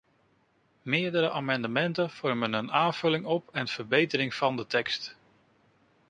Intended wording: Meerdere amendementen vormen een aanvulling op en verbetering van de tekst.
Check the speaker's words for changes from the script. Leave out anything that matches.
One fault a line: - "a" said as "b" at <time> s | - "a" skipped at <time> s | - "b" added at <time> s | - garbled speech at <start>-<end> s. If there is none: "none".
none